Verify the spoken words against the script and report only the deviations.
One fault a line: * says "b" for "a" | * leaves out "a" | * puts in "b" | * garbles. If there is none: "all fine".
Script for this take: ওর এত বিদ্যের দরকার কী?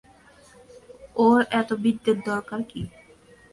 all fine